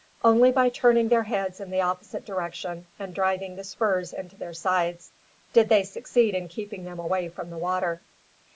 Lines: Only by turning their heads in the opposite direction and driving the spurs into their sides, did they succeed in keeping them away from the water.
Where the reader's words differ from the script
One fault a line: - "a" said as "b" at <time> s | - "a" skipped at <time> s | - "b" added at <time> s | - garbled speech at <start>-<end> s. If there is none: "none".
none